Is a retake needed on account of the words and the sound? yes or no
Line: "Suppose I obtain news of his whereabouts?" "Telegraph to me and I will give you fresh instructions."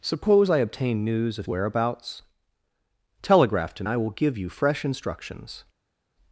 yes